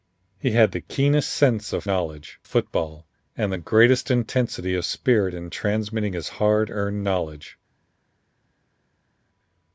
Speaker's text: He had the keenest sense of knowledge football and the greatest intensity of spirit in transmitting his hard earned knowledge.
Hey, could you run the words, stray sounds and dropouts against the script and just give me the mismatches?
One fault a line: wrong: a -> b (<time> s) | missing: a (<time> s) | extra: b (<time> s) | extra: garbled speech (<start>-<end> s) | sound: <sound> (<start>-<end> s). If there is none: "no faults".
no faults